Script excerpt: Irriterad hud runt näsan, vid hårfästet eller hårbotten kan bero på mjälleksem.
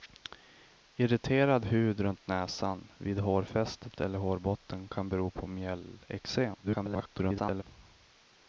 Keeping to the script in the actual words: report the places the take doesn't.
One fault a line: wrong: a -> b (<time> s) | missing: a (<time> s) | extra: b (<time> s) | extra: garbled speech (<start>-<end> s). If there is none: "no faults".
extra: garbled speech (6.6-7.6 s)